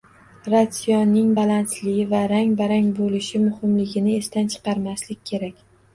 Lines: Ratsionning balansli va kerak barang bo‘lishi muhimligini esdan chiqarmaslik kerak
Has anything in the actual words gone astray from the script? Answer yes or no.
yes